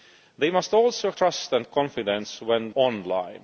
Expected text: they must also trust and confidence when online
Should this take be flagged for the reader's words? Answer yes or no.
no